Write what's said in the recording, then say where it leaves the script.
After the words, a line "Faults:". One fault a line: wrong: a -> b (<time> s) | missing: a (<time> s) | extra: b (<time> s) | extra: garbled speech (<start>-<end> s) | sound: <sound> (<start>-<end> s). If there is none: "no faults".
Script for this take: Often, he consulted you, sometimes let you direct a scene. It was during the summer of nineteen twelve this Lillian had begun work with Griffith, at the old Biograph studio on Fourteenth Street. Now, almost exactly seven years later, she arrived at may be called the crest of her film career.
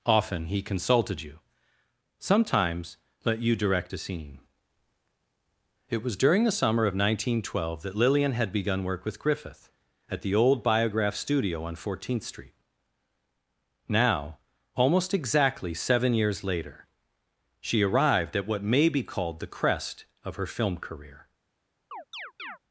Often, he consulted you, sometimes let you direct a scene. It was during the summer of nineteen twelve that Lillian had begun work with Griffith, at the old Biograph studio on Fourteenth Street. Now, almost exactly seven years later, she arrived at what may be called the crest of her film career.
Faults:
wrong: this -> that (7.8 s)
extra: what (18.5 s)
sound: chirp (21.9-22.6 s)